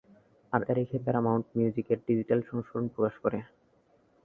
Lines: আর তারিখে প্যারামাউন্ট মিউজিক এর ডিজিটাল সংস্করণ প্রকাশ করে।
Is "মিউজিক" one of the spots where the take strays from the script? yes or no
no